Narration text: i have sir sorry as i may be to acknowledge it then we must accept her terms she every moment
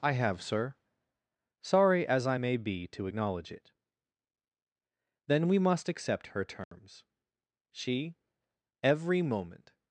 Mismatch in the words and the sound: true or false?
true